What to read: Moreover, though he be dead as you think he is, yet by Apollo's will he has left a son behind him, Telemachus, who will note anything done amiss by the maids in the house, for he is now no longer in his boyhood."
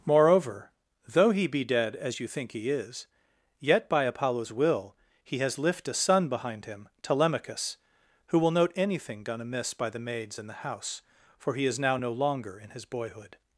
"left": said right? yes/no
no